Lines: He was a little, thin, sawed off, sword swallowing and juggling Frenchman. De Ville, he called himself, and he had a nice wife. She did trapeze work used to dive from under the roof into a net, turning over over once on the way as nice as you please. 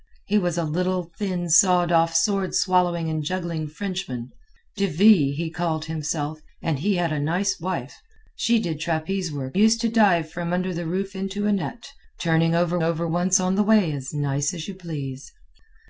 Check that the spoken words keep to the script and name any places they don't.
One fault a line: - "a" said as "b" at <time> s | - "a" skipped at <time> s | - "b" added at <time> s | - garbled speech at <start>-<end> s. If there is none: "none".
none